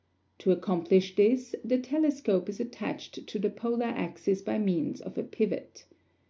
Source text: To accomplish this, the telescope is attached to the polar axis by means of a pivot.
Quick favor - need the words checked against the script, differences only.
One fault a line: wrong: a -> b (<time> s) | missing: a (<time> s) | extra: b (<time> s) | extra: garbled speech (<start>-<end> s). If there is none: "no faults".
no faults